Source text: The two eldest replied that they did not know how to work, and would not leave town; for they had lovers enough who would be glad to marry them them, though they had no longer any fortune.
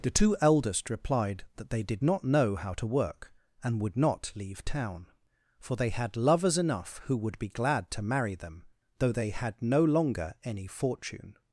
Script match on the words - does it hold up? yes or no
no